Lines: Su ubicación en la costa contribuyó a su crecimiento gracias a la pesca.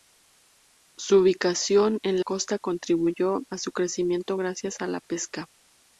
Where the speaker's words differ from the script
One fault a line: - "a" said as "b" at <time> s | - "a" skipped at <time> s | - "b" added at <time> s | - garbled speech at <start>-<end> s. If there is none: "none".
- "la" skipped at 2.2 s